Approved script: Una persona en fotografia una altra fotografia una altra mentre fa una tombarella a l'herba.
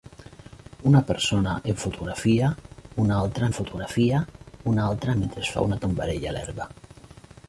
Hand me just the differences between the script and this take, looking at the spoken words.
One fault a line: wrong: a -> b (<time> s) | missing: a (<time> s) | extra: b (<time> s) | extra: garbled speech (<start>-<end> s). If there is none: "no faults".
no faults